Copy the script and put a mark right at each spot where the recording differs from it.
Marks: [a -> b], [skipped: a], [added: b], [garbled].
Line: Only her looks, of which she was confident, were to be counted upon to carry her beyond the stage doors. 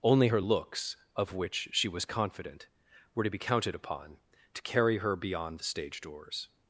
Only her looks, of which she was confident, were to be counted upon to carry her beyond the stage doors.